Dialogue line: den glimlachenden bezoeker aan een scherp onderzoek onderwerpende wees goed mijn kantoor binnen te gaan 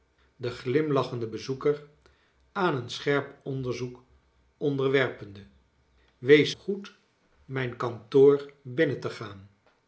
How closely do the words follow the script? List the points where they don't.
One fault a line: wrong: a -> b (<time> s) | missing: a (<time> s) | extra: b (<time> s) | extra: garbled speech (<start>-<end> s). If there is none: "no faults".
no faults